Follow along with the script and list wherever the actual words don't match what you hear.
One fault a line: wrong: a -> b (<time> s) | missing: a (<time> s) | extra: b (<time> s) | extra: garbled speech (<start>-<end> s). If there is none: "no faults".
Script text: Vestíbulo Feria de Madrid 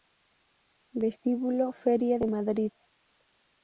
no faults